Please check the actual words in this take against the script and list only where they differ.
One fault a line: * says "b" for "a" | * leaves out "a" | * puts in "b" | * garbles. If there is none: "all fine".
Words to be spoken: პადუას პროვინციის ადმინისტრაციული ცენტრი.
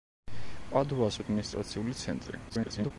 * leaves out "პროვინციის"
* garbles